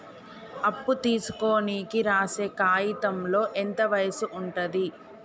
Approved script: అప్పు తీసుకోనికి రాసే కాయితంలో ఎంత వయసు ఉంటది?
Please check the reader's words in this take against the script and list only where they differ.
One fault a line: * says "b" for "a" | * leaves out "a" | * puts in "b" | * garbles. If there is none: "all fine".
all fine